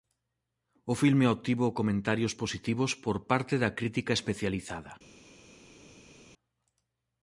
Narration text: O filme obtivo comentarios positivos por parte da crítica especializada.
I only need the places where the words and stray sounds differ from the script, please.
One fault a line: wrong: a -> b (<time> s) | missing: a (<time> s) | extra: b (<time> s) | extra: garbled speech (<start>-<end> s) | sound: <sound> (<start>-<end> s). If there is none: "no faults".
no faults